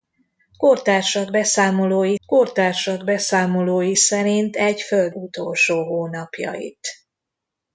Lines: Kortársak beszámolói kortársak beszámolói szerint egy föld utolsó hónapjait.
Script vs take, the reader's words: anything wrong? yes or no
no